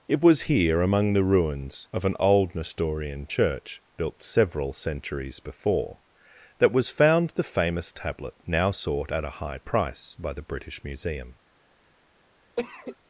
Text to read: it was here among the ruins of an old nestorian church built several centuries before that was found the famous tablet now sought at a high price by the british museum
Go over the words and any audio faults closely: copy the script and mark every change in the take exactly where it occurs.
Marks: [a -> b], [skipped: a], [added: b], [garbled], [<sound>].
it was here among the ruins of an old nestorian church built several centuries before that was found the famous tablet now sought at a high price by the british museum [cough]